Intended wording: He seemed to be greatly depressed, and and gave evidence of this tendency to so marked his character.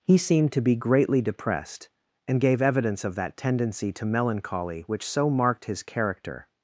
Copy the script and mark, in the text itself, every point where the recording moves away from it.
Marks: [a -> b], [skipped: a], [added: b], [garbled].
He seemed to be greatly depressed, and [skipped: and] gave evidence of [this -> that] tendency to [added: melancholy which] so marked his character.